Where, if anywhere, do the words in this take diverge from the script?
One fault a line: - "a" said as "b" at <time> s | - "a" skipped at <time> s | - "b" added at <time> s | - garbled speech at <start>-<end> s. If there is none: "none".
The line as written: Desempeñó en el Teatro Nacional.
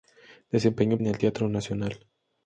none